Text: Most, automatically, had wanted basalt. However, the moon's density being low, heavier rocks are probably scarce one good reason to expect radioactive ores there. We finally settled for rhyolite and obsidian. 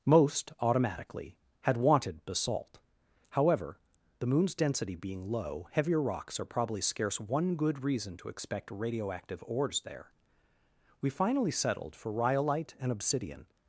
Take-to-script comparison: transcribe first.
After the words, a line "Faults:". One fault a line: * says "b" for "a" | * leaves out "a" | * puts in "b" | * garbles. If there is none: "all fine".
Most, automatically, had wanted basalt. However, the moon's density being low, heavier rocks are probably scarce one good reason to expect radioactive ores there. We finally settled for rhyolite and obsidian.
Faults:
all fine